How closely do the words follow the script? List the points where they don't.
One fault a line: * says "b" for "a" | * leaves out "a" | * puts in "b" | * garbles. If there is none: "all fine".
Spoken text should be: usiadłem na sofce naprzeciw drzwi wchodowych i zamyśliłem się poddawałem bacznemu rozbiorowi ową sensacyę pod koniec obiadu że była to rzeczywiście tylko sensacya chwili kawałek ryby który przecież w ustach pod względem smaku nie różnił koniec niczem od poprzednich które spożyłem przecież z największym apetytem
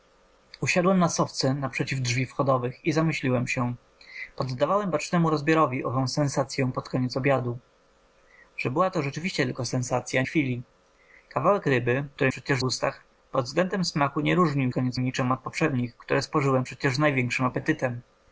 all fine